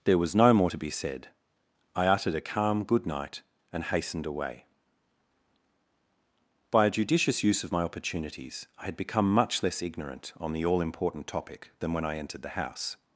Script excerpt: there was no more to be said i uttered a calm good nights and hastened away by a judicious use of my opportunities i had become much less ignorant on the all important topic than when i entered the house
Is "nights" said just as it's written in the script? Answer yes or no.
no